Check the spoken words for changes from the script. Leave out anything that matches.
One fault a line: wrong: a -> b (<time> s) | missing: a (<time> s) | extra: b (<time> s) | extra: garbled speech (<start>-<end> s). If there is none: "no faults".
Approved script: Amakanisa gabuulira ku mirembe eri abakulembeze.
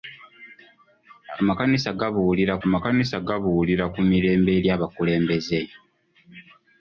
extra: amakanisa gabuulira (2.6 s)